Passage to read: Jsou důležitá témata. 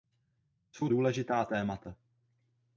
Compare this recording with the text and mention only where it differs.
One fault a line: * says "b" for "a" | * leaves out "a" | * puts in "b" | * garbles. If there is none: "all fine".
all fine